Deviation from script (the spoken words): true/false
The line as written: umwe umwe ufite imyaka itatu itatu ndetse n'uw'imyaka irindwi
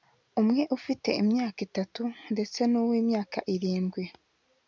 true